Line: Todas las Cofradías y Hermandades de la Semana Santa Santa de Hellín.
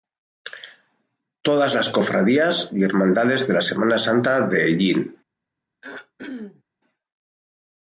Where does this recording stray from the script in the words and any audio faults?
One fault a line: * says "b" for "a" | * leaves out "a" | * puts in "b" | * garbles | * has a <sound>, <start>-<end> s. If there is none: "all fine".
* leaves out "Santa"
* has a throat clearing, 5.8-6.6 s